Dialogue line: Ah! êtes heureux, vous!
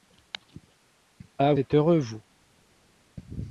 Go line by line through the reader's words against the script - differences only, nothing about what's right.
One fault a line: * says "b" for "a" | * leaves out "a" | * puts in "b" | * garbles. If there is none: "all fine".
all fine